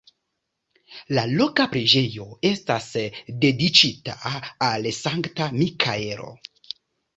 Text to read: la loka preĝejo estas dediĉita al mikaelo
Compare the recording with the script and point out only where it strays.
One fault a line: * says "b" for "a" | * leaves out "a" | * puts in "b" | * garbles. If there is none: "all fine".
* puts in "sankta"